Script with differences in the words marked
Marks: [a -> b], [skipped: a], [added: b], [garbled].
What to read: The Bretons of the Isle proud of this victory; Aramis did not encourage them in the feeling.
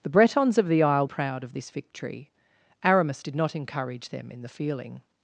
The Bretons of the Isle proud of this victory; Aramis did not encourage them in the feeling.